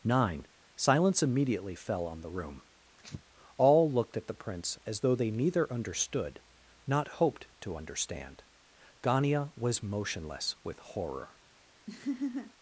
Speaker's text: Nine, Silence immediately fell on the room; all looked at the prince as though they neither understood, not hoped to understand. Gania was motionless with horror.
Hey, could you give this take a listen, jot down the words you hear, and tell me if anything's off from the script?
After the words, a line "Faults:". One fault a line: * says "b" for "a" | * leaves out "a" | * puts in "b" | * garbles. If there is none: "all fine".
Nine, Silence immediately fell on the room; all looked at the prince as though they neither understood, not hoped to understand. Gania was motionless with horror.
Faults:
all fine